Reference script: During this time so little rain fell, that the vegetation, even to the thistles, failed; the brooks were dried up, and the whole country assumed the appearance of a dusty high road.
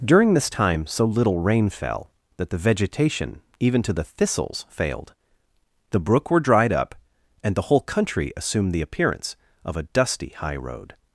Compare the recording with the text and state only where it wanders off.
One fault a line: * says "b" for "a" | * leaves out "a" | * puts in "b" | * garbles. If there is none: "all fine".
* says "brook" for "brooks"